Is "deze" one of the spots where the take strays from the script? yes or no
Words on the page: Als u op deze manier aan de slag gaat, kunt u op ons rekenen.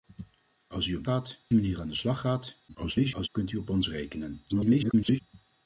yes